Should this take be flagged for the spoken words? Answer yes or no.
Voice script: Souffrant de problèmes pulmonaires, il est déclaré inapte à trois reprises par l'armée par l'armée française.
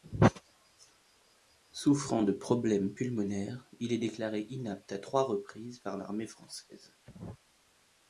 yes